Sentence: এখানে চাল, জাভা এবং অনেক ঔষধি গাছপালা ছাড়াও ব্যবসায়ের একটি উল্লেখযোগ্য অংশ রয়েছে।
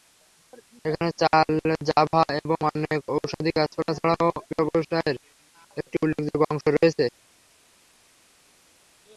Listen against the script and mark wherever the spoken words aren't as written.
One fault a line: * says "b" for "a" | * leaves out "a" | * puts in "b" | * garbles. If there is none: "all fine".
all fine